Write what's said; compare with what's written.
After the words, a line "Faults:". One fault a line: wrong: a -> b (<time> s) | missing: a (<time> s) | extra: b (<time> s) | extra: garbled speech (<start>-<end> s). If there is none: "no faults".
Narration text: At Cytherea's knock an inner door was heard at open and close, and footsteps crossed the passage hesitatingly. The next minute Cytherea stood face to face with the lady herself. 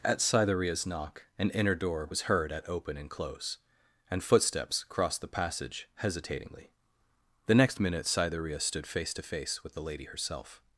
At Cytherea's knock an inner door was heard at open and close, and footsteps crossed the passage hesitatingly. The next minute Cytherea stood face to face with the lady herself.
Faults:
no faults